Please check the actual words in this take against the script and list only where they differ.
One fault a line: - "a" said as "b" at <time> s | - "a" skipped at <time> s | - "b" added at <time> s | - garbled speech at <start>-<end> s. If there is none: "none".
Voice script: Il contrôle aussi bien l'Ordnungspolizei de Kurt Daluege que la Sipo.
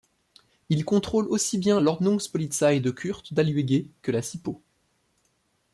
none